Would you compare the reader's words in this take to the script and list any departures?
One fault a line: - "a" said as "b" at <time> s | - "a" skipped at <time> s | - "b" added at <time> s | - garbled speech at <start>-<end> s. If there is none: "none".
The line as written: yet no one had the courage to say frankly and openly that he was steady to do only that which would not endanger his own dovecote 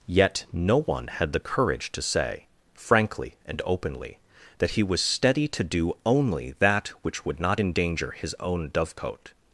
none